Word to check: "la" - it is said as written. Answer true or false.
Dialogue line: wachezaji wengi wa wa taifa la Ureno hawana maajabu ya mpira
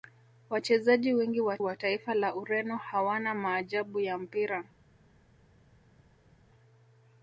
true